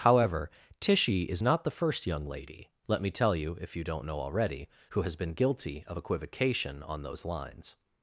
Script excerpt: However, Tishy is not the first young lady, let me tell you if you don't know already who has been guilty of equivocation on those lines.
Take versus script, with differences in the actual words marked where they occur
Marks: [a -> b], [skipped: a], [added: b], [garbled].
However, Tishy is not the first young lady, let me tell you if you don't know already who has been guilty of equivocation on those lines.